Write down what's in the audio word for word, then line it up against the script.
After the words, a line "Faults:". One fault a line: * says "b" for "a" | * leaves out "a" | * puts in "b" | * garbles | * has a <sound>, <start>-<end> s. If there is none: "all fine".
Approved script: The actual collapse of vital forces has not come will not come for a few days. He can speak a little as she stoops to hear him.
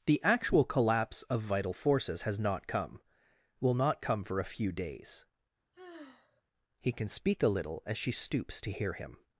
The actual collapse of vital forces has not come will not come for a few days. He can speak a little as she stoops to hear him.
Faults:
* has a sigh, 5.7-6.4 s